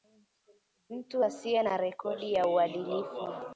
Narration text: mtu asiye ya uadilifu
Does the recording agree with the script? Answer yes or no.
no